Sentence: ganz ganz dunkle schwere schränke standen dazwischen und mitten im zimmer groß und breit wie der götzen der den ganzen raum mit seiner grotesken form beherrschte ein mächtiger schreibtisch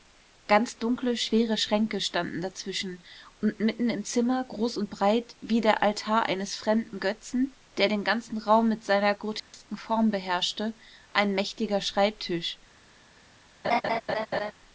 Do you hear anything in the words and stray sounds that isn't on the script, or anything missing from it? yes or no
yes